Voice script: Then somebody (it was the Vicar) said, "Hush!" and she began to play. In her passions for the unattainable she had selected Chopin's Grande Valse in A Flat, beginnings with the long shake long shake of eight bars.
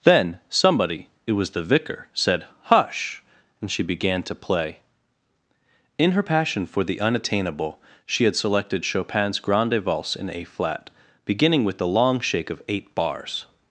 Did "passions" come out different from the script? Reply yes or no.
yes